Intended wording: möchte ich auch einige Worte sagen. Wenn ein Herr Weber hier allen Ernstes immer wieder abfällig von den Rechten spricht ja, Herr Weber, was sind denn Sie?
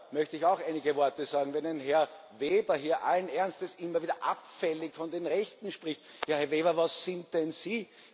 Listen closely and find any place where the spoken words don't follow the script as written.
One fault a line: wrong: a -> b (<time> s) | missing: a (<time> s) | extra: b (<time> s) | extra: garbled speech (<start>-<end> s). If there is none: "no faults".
no faults